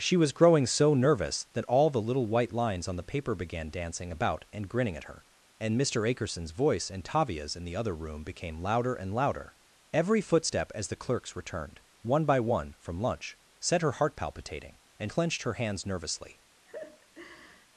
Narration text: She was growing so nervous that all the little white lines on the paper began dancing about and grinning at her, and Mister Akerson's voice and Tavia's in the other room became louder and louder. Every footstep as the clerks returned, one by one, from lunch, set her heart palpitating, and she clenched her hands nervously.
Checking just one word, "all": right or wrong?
right